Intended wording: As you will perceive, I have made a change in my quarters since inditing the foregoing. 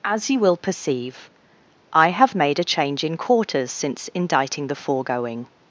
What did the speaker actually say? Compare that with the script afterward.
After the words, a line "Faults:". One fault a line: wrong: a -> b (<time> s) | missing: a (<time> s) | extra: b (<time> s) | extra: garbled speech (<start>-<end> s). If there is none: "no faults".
As you will perceive, I have made a change in quarters since inditing the foregoing.
Faults:
missing: my (3.2 s)